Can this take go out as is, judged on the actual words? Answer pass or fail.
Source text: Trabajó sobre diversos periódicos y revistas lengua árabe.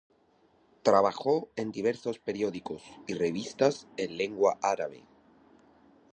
fail